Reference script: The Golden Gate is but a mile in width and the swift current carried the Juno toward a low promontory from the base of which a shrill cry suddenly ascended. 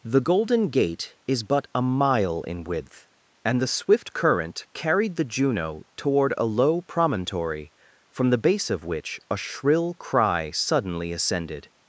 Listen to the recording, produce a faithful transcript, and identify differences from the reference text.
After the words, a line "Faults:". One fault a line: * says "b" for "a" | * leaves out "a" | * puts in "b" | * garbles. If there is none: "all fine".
The Golden Gate is but a mile in width and the swift current carried the Juno toward a low promontory from the base of which a shrill cry suddenly ascended.
Faults:
all fine